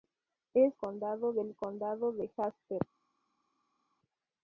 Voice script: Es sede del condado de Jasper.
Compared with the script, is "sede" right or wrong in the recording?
wrong